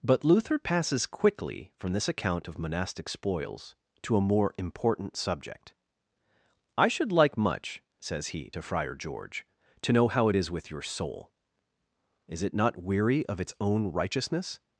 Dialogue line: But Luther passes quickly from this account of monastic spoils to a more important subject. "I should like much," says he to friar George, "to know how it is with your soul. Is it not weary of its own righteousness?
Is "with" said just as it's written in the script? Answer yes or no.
yes